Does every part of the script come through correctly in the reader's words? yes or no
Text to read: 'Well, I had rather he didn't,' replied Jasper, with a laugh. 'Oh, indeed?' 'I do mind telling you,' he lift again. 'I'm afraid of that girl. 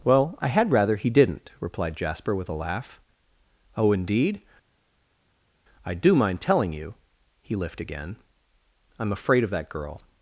yes